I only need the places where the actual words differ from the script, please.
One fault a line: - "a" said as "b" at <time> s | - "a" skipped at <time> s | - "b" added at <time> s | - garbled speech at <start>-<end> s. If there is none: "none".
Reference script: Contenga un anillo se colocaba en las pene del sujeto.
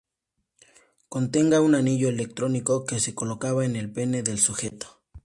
- "electrónico que" added at 2.1 s
- "las" said as "el" at 3.8 s